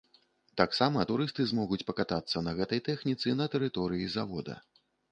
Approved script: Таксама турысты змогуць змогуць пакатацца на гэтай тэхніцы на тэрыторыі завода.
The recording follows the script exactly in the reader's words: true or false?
false